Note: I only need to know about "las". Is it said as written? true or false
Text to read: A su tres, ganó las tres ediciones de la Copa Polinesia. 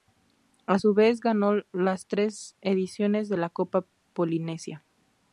true